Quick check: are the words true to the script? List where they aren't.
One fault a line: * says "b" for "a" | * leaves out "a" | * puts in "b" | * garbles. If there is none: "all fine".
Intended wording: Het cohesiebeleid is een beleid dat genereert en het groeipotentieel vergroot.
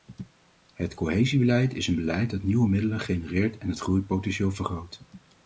* puts in "nieuwe middelen"